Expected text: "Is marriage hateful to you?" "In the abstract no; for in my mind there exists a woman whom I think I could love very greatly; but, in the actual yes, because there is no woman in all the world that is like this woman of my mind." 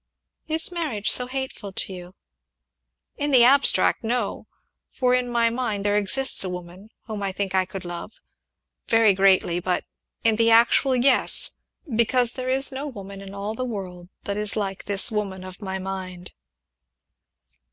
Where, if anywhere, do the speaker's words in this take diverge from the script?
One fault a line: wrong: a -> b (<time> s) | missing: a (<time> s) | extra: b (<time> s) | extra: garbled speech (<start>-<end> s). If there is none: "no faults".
extra: so (1.1 s)